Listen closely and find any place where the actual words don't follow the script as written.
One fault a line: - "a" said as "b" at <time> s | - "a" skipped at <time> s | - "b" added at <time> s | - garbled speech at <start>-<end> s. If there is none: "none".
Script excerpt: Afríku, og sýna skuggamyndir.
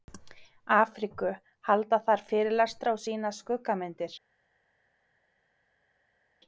- "halda þar fyrirlestra" added at 1.7 s